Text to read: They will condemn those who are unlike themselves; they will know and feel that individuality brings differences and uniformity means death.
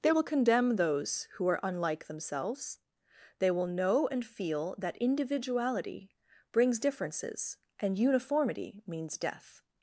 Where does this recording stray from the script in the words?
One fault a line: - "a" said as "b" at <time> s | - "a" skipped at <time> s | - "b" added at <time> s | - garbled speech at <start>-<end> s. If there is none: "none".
none